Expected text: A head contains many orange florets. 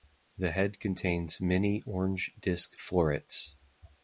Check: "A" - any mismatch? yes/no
yes